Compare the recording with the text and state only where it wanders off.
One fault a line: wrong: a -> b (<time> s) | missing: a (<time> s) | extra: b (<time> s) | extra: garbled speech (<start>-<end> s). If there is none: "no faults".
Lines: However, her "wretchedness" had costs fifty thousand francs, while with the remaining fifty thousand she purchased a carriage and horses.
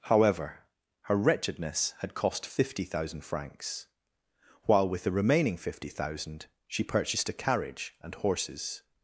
wrong: costs -> cost (2.1 s)